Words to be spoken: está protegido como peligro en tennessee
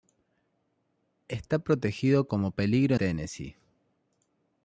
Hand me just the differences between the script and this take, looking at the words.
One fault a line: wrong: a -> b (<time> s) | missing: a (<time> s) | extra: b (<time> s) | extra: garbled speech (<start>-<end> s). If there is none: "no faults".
missing: en (3.0 s)